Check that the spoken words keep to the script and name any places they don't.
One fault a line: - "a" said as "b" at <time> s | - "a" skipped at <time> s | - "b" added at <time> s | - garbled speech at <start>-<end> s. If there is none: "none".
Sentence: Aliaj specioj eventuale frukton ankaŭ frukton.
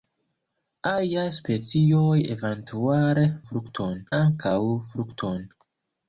none